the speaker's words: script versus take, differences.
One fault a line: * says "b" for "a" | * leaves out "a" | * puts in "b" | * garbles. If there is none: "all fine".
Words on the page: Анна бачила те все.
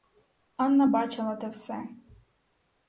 all fine